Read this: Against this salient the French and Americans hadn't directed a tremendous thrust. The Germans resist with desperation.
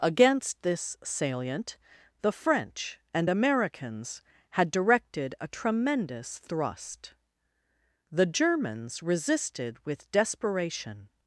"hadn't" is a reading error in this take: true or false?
true